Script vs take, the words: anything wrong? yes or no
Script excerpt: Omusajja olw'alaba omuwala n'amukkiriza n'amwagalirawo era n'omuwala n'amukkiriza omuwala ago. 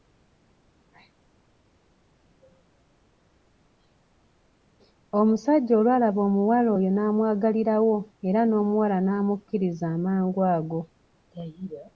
yes